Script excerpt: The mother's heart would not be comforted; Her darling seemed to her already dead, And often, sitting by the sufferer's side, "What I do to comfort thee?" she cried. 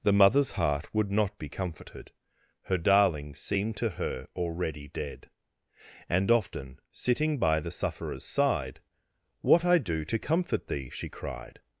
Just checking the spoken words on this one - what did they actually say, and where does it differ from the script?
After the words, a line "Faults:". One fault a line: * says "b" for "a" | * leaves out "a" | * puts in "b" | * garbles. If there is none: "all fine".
The mother's heart would not be comforted; Her darling seemed to her already dead, And often, sitting by the sufferer's side, "What I do to comfort thee?" she cried.
Faults:
all fine